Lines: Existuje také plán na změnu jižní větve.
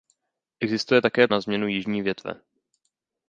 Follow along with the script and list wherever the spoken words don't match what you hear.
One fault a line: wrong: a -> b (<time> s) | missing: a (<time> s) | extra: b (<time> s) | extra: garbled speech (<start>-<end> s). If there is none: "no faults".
missing: plán (1.3 s)